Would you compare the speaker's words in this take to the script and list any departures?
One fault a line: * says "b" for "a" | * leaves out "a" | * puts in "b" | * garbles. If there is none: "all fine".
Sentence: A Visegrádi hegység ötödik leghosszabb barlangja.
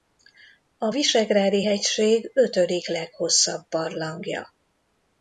all fine